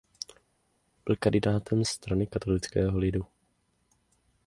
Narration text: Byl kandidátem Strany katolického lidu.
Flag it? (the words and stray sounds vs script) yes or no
no